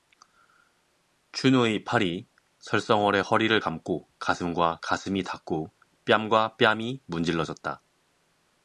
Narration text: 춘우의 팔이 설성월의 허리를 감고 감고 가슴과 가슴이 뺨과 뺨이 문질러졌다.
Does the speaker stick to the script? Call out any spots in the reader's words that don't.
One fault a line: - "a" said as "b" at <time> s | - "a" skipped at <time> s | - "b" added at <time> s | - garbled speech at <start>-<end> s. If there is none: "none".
- "감고" skipped at 4.1 s
- "닿고" added at 5.2 s